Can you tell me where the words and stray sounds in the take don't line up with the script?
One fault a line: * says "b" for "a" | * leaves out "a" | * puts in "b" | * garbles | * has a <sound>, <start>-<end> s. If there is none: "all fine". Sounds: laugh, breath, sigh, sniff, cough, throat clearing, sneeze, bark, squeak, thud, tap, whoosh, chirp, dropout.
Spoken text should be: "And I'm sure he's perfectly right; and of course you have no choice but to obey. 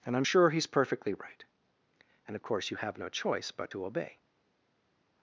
all fine